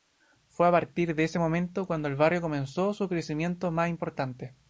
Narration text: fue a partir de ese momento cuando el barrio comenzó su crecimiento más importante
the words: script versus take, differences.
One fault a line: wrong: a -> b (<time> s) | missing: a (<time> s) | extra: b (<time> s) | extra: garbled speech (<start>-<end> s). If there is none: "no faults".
no faults